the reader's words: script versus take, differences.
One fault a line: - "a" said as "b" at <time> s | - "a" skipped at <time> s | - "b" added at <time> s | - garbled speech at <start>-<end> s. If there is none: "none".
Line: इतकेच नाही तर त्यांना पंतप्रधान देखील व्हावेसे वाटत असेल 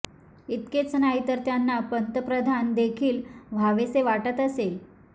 none